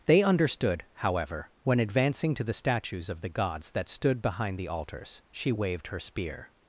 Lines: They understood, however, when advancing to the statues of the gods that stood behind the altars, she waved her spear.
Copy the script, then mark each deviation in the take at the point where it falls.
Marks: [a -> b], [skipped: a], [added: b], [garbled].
They understood, however, when advancing to the statues of the gods that stood behind the altars, she waved her spear.